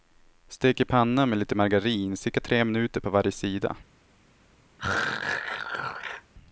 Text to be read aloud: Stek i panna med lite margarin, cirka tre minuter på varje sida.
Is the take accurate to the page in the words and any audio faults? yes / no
no